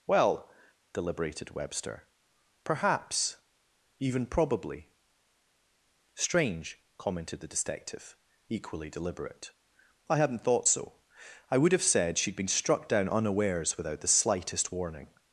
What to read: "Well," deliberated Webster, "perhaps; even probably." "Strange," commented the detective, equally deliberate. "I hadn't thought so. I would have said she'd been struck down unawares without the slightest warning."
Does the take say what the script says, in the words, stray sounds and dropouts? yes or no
yes